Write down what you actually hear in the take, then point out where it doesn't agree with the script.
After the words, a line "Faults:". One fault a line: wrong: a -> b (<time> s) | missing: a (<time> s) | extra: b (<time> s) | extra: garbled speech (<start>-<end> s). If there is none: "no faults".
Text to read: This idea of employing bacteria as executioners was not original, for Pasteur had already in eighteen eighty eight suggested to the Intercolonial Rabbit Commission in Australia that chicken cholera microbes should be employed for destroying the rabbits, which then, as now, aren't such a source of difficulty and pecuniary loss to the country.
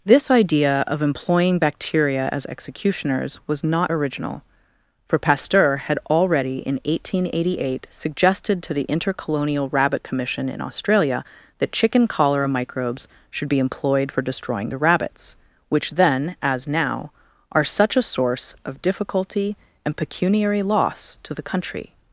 This idea of employing bacteria as executioners was not original, for Pasteur had already in eighteen eighty eight suggested to the Intercolonial Rabbit Commission in Australia that chicken cholera microbes should be employed for destroying the rabbits, which then, as now, are such a source of difficulty and pecuniary loss to the country.
Faults:
wrong: aren't -> are (17.5 s)